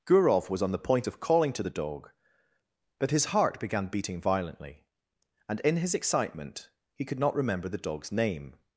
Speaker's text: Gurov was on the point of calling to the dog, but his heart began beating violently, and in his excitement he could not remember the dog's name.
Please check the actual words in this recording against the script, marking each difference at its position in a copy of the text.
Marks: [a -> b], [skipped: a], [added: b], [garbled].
Gurov was on the point of calling to the dog, but his heart began beating violently, and in his excitement he could not remember the dog's name.